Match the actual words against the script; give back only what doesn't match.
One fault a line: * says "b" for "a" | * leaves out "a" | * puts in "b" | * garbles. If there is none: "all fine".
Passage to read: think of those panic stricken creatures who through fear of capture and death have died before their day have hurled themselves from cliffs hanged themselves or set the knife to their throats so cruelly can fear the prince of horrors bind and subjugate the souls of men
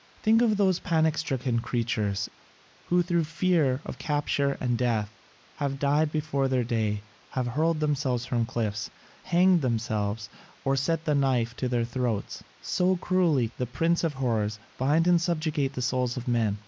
* leaves out "can fear"